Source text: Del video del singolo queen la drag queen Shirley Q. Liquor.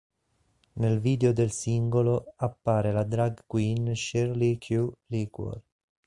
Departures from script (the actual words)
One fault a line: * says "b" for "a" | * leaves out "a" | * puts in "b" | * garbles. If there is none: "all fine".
* says "Nel" for "Del"
* says "appare" for "queen"